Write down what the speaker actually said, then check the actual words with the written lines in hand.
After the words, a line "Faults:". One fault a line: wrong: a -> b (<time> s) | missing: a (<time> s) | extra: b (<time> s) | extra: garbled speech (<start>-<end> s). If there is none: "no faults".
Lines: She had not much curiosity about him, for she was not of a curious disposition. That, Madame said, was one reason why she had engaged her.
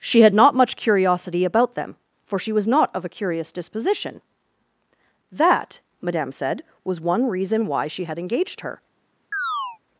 She had not much curiosity about them, for she was not of a curious disposition. That, Madame said, was one reason why she had engaged her.
Faults:
wrong: him -> them (1.8 s)